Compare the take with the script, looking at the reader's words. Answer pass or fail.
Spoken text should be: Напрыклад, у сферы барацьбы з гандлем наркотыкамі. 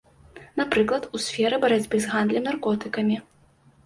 pass